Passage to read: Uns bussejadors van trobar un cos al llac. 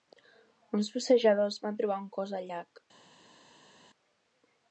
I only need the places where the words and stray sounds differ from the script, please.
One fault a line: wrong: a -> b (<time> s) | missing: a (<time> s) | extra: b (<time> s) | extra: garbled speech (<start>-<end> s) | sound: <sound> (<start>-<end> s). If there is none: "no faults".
no faults